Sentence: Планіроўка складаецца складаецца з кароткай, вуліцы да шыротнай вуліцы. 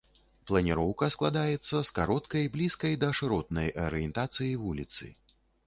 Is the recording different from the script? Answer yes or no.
yes